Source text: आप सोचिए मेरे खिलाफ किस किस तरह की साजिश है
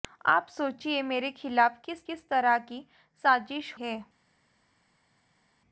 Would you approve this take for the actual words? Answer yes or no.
yes